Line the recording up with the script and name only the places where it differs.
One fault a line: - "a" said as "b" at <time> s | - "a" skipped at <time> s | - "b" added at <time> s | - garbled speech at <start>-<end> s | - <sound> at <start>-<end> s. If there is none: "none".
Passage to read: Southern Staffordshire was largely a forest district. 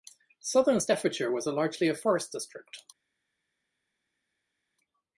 none